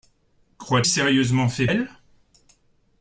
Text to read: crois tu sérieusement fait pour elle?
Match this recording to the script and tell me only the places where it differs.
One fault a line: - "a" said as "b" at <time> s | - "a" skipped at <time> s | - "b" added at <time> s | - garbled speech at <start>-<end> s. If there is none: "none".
- "tu" skipped at 0.8 s
- "pour" skipped at 1.7 s